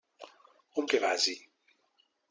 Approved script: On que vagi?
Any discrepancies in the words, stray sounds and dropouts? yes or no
no